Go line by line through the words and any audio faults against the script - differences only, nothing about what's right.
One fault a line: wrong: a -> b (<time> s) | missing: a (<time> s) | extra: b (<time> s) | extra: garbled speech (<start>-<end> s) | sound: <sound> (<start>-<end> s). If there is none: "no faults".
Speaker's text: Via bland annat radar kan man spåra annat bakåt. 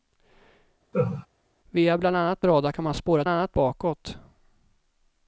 sound: laugh (0.9-1.3 s)